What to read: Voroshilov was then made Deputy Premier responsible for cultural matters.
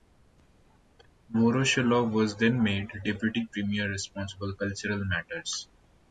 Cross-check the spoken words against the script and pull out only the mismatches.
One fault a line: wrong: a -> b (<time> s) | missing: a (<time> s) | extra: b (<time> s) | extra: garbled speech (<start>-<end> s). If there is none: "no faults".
missing: for (4.5 s)